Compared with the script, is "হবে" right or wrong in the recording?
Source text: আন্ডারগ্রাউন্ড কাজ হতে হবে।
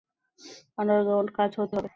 right